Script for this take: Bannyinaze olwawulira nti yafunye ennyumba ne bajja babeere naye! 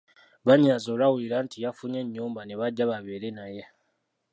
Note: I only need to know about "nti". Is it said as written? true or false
true